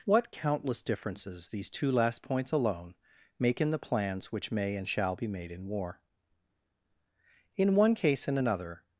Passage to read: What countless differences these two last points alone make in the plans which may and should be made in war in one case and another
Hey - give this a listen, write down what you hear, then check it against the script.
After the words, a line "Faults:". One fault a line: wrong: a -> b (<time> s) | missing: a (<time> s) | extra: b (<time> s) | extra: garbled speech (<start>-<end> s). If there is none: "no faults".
What countless differences these two last points alone make in the plans which may and shall be made in war in one case and another
Faults:
wrong: should -> shall (4.9 s)